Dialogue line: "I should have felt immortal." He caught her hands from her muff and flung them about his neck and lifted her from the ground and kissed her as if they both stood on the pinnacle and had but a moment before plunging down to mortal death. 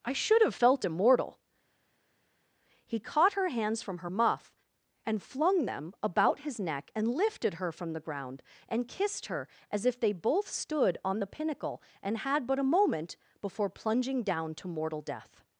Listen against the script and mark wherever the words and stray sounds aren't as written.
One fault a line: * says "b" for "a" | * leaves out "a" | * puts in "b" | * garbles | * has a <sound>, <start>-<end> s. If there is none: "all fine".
all fine